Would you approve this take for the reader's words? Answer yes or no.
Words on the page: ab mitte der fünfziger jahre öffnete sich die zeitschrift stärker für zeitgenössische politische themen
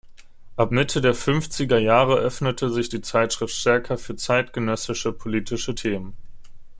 yes